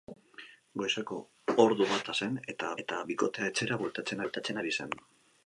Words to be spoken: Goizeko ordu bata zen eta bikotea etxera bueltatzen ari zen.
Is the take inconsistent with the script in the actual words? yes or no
yes